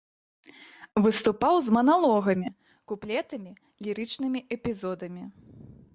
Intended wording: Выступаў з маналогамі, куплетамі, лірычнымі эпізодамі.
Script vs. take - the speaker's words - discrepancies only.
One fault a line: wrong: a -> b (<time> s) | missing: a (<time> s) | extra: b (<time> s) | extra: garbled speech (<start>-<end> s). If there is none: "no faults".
no faults